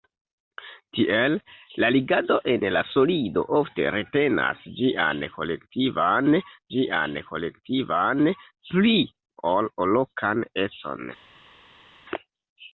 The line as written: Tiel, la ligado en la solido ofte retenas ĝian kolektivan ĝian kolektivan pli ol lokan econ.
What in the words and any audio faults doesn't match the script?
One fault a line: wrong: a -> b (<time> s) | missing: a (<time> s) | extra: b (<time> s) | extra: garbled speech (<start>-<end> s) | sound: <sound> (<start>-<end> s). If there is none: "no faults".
no faults